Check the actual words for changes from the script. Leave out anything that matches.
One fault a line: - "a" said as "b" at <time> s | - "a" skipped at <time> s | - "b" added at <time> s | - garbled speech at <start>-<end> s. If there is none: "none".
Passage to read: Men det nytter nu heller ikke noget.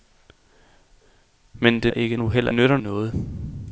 - "nytter" said as "ikke" at 1.9 s
- "ikke" said as "nytter" at 2.5 s